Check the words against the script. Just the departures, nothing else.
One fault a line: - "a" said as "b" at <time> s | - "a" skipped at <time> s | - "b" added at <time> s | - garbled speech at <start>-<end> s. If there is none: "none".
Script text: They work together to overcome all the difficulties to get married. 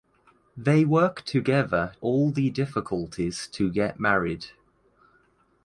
- "to overcome" skipped at 1.9 s